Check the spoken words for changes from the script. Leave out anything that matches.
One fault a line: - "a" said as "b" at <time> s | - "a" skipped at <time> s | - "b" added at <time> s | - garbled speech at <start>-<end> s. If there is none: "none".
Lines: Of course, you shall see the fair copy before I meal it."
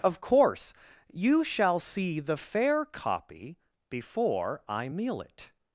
none